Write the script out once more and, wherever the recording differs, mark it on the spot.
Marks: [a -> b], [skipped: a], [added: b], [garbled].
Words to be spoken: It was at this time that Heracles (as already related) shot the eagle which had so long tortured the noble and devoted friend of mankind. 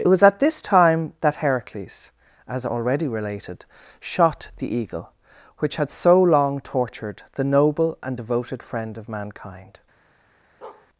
It was at this time that Heracles (as already related) shot the eagle which had so long tortured the noble and devoted friend of mankind.